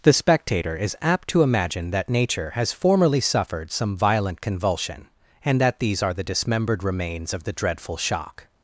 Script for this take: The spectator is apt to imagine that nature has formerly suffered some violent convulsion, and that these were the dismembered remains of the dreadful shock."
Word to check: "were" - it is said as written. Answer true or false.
false